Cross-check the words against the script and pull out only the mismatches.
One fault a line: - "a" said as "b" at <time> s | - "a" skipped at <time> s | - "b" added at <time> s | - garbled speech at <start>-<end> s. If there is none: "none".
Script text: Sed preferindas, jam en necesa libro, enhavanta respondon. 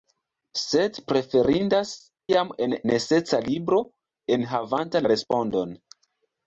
none